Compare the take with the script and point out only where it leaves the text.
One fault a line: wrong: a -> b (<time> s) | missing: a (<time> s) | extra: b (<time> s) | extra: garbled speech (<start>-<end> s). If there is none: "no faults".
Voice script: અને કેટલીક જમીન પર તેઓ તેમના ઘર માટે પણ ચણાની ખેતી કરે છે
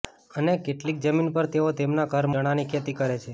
missing: માટે પણ (2.3 s)